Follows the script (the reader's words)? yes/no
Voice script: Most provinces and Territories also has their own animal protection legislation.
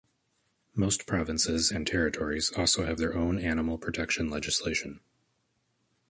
no